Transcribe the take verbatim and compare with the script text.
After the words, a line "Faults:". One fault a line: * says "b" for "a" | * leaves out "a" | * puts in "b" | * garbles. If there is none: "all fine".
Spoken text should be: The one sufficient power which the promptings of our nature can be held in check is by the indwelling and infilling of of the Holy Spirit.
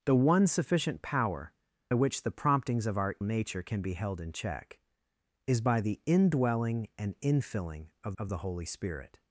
The one sufficient power which the promptings of our nature can be held in check is by the indwelling and infilling of of the Holy Spirit.
Faults:
all fine